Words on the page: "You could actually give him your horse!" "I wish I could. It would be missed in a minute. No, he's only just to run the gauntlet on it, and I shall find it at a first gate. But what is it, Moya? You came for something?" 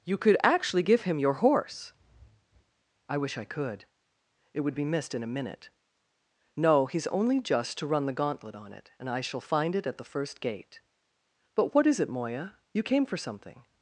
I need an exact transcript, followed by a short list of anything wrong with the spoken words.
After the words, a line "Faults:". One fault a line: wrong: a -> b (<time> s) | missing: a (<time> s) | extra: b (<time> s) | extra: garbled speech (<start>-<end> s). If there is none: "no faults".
"You could actually give him your horse!" "I wish I could. It would be missed in a minute. No, he's only just to run the gauntlet on it, and I shall find it at the first gate. But what is it, Moya? You came for something?"
Faults:
wrong: a -> the (10.0 s)